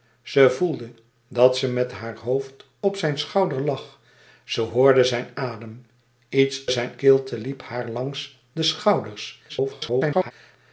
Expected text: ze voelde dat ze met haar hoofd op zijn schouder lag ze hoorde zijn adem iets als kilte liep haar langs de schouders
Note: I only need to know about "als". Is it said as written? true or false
false